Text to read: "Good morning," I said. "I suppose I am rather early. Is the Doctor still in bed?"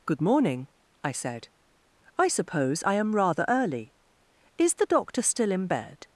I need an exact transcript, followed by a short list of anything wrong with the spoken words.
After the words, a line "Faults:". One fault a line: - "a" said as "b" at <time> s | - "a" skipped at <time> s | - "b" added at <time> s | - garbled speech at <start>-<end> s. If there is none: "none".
"Good morning," I said. "I suppose I am rather early. Is the Doctor still in bed?"
Faults:
none